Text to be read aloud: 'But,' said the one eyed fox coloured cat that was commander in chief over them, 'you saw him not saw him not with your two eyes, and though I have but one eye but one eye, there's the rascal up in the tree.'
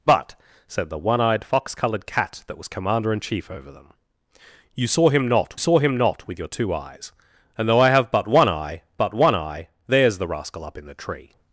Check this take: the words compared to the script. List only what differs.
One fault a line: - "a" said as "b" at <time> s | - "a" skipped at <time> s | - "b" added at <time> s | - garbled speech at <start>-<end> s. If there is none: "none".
none